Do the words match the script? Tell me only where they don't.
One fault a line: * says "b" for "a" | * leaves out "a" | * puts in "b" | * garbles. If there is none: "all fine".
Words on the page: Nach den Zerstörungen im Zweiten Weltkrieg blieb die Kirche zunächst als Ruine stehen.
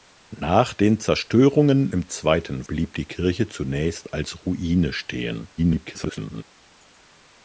* leaves out "Weltkrieg"
* garbles